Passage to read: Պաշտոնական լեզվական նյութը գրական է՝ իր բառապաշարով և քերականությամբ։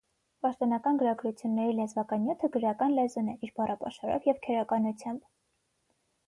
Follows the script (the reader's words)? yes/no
no